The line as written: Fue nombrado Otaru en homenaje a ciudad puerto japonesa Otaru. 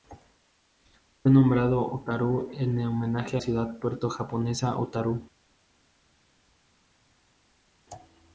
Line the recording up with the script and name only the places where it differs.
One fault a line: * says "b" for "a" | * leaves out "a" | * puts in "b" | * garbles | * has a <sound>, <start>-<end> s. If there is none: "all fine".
all fine